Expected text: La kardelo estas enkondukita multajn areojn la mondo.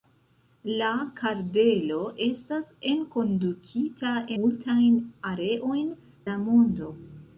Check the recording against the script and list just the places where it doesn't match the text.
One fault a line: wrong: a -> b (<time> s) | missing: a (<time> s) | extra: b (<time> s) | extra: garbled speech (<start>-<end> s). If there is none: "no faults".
no faults